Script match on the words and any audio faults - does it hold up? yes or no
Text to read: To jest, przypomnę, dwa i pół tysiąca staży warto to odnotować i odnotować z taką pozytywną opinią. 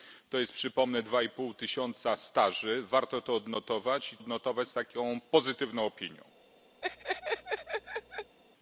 no